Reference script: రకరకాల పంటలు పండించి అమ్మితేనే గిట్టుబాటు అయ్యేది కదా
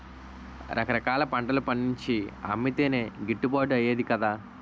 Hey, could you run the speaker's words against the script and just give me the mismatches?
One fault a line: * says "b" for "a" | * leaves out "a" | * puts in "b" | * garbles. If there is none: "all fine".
all fine